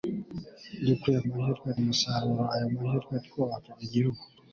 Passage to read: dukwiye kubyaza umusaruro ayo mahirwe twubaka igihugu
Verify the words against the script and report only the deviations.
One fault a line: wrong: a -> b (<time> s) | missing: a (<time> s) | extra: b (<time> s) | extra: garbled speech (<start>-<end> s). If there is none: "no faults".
wrong: kubyaza -> mahirwe (1.3 s)